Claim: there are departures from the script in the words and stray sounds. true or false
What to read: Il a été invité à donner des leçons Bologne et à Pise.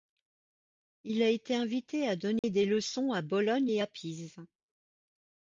true